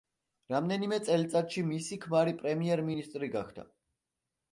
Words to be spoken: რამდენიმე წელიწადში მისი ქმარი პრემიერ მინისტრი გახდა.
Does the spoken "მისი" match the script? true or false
true